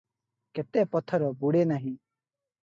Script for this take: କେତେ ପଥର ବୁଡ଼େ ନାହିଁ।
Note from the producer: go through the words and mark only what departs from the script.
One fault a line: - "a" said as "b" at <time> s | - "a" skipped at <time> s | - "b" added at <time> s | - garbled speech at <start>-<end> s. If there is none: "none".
none